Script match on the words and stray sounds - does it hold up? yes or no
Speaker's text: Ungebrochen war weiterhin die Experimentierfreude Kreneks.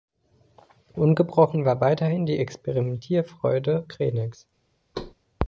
no